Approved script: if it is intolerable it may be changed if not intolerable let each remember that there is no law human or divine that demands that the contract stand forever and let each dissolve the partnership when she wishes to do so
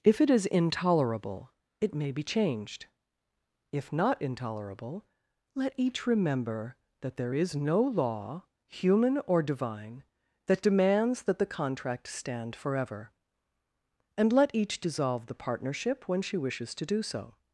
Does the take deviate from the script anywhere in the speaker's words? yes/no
no